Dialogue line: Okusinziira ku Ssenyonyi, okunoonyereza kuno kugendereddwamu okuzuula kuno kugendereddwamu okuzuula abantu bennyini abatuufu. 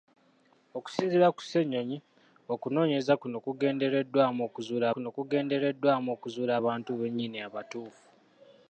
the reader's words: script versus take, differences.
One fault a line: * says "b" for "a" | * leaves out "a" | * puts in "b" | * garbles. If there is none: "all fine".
all fine